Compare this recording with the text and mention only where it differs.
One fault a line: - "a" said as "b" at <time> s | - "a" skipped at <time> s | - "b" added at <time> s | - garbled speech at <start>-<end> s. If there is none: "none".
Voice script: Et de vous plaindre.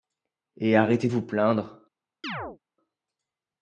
- "arrêtez" added at 0.8 s